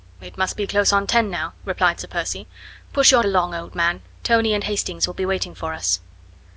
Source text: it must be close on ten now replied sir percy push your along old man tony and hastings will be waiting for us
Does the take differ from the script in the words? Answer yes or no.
no